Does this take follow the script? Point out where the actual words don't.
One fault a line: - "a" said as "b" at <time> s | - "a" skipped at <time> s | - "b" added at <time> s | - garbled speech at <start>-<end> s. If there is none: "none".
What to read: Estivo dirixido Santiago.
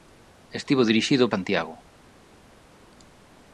none